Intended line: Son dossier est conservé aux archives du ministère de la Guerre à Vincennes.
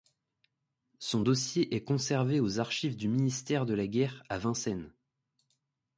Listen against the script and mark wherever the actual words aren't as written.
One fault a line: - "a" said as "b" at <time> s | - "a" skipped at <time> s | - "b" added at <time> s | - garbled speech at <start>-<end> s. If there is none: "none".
none